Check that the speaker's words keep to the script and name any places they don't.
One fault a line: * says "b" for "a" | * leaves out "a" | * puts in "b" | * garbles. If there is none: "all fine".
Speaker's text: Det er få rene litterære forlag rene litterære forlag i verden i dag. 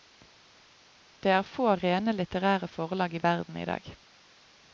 * leaves out "rene litterære forlag"